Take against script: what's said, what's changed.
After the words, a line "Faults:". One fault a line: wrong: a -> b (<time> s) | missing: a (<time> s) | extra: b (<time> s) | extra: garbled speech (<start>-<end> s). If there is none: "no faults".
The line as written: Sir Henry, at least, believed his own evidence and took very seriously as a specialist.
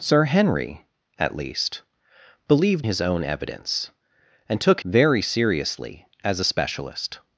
Sir Henry, at least, believed his own evidence and took very seriously as a specialist.
Faults:
no faults